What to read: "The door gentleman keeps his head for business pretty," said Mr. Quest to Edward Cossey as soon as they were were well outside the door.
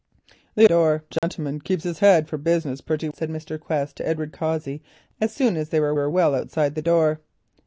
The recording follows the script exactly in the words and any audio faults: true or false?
false